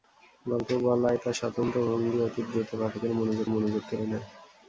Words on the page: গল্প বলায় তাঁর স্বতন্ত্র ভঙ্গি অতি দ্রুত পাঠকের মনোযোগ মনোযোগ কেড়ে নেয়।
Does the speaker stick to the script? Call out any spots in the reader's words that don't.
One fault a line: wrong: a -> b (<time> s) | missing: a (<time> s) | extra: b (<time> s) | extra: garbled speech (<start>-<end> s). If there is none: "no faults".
no faults